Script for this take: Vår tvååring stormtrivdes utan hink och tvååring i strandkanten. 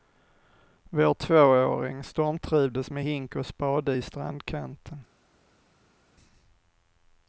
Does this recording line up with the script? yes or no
no